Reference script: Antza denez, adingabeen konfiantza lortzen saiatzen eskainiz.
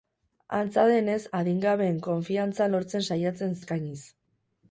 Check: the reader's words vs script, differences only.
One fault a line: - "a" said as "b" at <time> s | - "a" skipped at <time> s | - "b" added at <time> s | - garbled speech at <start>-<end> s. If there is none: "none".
none